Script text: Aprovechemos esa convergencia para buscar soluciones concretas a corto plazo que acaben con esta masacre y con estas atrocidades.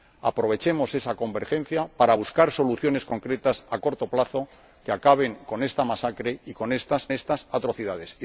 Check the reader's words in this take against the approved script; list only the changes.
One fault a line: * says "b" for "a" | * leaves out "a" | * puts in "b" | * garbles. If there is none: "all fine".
* puts in "estas"